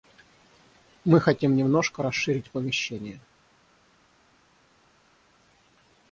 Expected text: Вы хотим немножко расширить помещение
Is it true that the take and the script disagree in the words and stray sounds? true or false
true